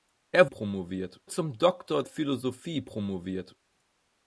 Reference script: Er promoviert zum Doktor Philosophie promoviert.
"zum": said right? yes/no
yes